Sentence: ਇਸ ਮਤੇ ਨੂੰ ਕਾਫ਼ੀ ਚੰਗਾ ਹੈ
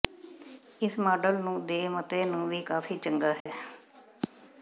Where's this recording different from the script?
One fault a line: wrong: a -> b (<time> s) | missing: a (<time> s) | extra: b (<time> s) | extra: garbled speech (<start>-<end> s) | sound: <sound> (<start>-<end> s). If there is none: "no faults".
extra: ਮਾਡਲ ਨੂੰ ਦੇ (1.0 s)
extra: ਵੀ (2.5 s)
sound: dropout (3.4-3.5 s)